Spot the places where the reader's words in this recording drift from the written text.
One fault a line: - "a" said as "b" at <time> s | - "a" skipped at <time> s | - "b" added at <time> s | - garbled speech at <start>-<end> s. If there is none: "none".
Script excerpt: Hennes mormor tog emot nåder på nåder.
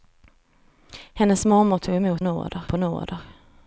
none